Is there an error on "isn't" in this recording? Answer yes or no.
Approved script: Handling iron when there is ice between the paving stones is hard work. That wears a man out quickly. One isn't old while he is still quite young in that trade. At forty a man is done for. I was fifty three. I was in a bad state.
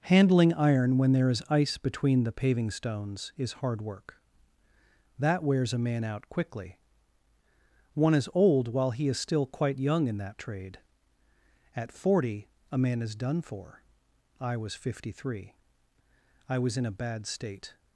yes